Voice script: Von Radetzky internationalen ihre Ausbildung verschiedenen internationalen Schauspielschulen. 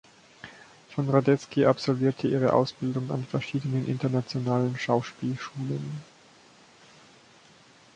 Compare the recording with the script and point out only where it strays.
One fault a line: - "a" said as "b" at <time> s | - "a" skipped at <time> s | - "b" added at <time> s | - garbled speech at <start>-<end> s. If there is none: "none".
- "internationalen" said as "absolvierte" at 1.7 s
- "an" added at 3.1 s